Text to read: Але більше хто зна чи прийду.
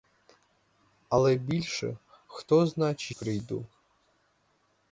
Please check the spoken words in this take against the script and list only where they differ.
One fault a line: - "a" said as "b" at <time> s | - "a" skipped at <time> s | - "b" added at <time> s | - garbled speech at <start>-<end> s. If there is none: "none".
none